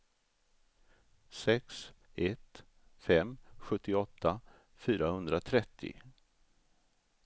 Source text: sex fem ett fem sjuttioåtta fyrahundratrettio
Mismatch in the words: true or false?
true